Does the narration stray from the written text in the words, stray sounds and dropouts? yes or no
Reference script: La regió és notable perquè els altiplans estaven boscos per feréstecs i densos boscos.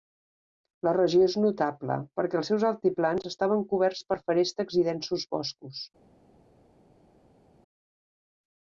yes